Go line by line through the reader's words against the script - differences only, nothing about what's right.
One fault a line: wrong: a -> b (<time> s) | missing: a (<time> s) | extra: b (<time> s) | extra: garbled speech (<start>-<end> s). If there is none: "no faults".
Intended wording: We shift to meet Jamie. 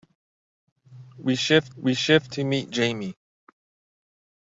extra: we shift (1.8 s)